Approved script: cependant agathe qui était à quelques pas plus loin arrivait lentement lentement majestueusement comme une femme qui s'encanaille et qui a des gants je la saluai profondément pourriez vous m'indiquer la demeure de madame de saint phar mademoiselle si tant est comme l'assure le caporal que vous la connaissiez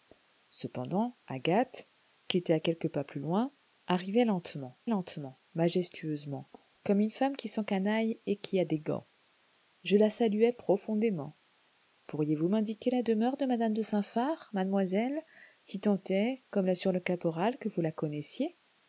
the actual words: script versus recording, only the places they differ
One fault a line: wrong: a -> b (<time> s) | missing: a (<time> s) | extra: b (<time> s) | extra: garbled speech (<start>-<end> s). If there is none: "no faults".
no faults